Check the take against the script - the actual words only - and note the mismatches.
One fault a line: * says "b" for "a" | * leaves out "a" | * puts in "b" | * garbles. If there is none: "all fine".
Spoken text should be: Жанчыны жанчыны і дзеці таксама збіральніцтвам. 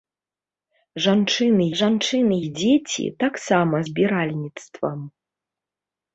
all fine